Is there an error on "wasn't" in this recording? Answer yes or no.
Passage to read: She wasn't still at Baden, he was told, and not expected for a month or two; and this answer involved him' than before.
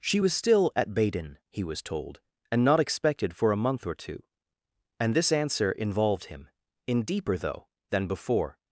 yes